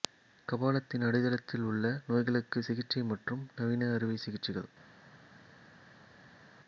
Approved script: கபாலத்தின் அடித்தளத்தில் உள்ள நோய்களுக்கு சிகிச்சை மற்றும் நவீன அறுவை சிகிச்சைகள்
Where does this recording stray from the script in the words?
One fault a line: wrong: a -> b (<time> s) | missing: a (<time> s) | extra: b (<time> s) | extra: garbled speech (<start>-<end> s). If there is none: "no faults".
no faults